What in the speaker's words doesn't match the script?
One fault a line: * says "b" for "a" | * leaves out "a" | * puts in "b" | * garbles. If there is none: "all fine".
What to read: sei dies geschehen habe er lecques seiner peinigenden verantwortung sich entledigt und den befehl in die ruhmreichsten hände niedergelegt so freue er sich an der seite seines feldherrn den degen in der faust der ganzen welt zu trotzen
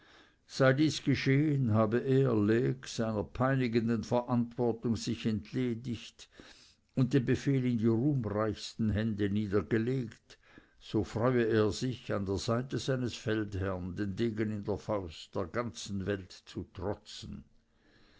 all fine